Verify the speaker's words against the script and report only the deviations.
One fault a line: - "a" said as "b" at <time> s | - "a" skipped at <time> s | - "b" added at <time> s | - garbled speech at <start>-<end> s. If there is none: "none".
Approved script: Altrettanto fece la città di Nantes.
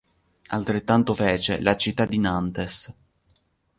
none